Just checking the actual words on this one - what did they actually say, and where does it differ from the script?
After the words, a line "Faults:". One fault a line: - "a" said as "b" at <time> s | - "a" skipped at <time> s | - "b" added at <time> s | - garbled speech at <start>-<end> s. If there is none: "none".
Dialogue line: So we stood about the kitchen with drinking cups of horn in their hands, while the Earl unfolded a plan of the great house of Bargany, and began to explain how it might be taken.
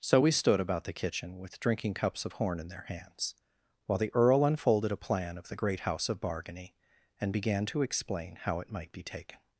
So we stood about the kitchen with drinking cups of horn in their hands, while the Earl unfolded a plan of the great house of Bargany, and began to explain how it might be taken.
Faults:
none